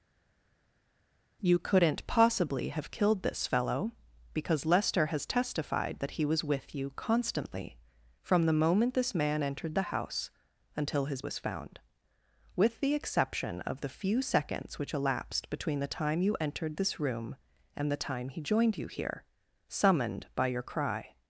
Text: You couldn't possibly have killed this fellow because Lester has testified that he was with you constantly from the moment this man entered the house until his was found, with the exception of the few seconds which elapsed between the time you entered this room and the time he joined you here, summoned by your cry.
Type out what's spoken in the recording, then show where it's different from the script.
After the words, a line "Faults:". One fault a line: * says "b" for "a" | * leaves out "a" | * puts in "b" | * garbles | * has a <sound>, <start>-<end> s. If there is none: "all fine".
You couldn't possibly have killed this fellow because Lester has testified that he was with you constantly from the moment this man entered the house until his was found, with the exception of the few seconds which elapsed between the time you entered this room and the time he joined you here, summoned by your cry.
Faults:
all fine